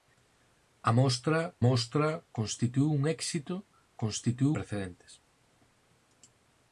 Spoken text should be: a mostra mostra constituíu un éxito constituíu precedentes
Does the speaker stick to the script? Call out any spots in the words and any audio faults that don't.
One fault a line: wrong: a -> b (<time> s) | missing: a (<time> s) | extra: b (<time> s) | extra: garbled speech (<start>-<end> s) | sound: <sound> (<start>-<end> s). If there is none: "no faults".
no faults